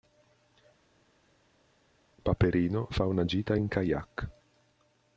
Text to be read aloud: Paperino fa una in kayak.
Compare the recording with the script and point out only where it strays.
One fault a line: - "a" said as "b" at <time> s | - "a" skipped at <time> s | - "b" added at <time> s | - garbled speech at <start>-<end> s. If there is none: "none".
- "gita" added at 3.2 s